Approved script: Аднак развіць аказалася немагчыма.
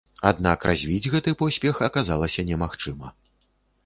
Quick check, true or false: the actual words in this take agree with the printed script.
false